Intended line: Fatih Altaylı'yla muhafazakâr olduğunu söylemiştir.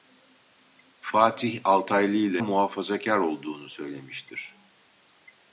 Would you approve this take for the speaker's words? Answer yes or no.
yes